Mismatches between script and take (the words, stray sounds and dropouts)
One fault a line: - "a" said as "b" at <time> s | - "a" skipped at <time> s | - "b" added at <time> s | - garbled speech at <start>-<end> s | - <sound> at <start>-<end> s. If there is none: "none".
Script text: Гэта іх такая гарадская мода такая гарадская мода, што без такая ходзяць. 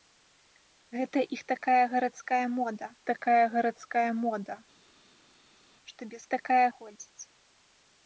none